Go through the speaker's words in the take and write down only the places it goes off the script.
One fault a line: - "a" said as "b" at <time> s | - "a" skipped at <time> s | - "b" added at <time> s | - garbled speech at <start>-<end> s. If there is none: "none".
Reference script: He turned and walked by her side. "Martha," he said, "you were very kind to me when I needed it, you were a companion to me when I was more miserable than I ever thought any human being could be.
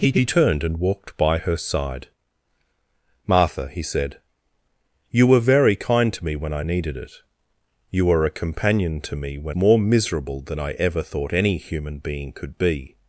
- "he" added at 0.1 s
- "I was" skipped at 9.6 s